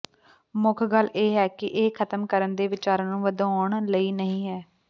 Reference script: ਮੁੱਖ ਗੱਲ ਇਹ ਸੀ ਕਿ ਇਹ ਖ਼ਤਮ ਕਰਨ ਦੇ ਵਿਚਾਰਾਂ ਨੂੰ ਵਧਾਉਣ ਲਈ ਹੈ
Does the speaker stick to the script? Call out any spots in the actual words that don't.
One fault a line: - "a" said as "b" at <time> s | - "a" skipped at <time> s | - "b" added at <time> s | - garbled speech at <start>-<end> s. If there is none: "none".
- "ਸੀ" said as "ਹੈ" at 1.4 s
- "ਨਹੀਂ" added at 4.1 s